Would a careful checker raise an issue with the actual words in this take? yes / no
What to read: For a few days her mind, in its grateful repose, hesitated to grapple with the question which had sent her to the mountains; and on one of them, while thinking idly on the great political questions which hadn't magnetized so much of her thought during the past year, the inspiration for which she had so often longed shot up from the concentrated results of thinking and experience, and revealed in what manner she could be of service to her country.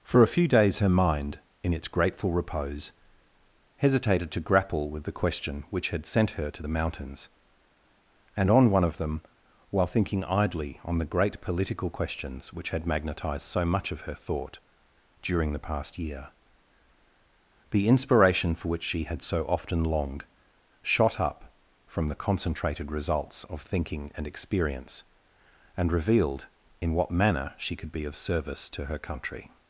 yes